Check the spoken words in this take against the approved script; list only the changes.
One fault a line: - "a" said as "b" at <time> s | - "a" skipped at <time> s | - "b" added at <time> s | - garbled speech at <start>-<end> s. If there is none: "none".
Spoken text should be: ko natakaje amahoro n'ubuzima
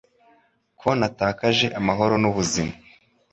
none